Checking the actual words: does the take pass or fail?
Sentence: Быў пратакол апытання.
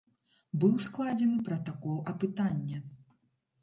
fail